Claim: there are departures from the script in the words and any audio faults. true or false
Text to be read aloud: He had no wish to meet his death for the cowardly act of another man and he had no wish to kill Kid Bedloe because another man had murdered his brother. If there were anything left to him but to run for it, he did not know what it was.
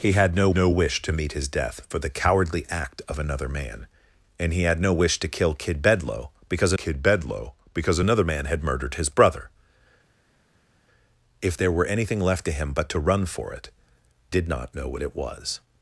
true